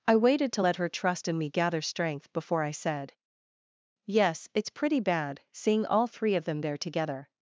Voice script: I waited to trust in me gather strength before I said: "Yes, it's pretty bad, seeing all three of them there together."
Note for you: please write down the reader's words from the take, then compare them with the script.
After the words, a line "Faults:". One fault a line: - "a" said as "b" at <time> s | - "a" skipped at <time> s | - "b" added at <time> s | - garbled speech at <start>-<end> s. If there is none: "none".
I waited to let her trust in me gather strength before I said: "Yes, it's pretty bad, seeing all three of them there together."
Faults:
- "let her" added at 0.6 s